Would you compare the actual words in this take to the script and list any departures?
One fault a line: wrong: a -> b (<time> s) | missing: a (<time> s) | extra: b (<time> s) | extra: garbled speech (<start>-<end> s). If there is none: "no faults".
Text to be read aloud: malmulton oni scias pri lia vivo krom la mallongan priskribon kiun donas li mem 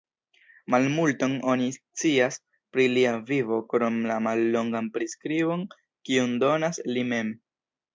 no faults